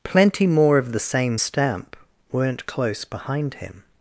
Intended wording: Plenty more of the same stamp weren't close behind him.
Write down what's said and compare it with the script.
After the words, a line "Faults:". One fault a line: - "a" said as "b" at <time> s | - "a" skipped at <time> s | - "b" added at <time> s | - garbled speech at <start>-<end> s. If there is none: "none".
Plenty more of the same stamp weren't close behind him.
Faults:
none